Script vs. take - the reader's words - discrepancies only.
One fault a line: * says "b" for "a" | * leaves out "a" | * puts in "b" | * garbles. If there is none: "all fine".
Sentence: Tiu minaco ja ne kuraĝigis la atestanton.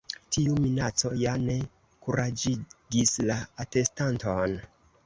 all fine